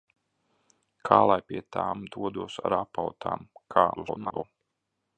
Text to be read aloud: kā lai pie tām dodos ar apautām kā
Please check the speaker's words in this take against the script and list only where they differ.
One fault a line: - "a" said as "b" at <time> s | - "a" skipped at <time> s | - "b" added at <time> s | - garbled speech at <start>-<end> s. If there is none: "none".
- garbled speech at 4.0-4.4 s